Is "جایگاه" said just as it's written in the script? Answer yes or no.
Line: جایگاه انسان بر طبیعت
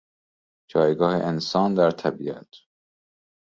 yes